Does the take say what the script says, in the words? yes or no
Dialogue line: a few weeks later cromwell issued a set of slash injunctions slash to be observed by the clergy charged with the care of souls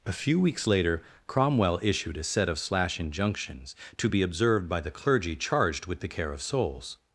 no